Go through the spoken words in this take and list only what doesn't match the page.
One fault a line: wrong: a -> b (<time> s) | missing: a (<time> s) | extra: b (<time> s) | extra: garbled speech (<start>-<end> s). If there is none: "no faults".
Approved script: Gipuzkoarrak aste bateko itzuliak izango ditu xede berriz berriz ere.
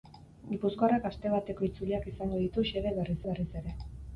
no faults